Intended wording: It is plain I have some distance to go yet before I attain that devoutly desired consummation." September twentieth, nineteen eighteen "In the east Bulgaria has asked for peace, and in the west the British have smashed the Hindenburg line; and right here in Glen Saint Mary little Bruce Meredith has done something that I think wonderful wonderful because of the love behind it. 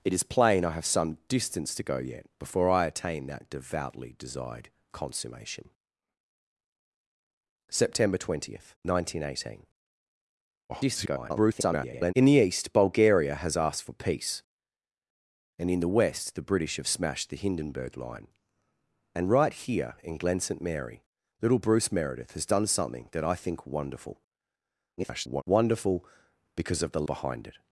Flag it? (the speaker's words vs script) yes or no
yes